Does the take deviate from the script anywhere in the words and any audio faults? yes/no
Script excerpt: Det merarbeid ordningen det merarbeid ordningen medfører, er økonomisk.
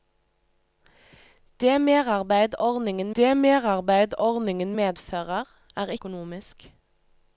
no